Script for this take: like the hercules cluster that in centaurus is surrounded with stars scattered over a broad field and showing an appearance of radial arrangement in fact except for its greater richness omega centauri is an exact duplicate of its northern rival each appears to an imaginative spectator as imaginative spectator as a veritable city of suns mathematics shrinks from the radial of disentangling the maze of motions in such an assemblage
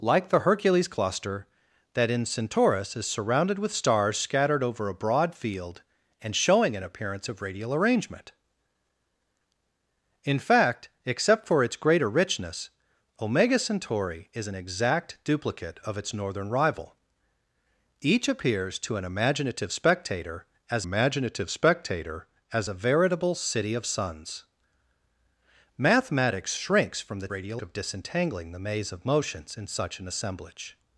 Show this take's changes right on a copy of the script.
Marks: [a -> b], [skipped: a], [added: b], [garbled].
like the hercules cluster that in centaurus is surrounded with stars scattered over a broad field and showing an appearance of radial arrangement in fact except for its greater richness omega centauri is an exact duplicate of its northern rival each appears to an imaginative spectator as imaginative spectator as a veritable city of suns mathematics shrinks from the radial of disentangling the maze of motions in such an assemblage